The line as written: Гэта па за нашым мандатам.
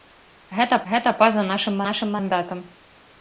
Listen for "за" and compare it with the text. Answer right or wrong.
right